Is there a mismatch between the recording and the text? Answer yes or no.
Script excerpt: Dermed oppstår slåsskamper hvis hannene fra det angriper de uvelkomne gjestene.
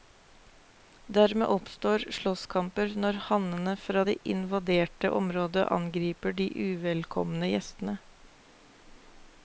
yes